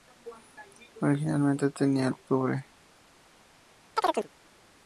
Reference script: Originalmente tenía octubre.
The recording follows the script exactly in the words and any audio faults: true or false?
false